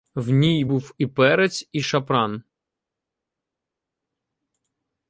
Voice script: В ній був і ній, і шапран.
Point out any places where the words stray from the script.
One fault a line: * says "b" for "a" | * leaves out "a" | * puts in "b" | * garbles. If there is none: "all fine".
* says "перець" for "ній"